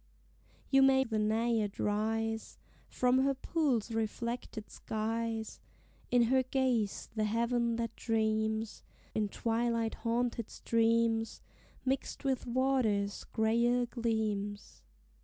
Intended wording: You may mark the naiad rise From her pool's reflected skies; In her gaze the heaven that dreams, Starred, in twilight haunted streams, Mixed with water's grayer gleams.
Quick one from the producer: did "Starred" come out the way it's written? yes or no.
no